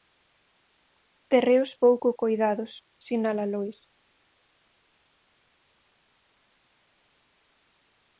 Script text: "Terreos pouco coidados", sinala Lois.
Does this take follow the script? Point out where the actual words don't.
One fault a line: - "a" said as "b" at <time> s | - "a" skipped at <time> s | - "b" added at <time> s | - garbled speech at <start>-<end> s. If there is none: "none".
none